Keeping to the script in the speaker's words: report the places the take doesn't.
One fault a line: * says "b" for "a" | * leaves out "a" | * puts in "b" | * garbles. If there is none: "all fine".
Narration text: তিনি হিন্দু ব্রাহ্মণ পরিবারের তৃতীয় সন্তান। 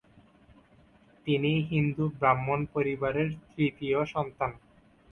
all fine